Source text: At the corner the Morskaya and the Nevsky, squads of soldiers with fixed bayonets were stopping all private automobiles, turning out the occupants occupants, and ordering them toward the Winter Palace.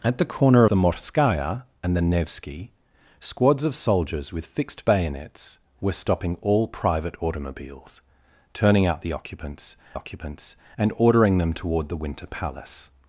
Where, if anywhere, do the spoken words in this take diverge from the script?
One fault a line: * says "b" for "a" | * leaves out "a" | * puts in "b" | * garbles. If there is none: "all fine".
all fine